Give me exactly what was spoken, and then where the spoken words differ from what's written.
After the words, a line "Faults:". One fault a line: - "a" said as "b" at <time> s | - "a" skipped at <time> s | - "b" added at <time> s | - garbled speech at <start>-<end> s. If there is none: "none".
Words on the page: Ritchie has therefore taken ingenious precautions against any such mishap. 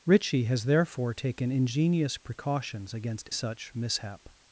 Ritchie has therefore taken ingenious precautions against such mishap.
Faults:
- "any" skipped at 3.3 s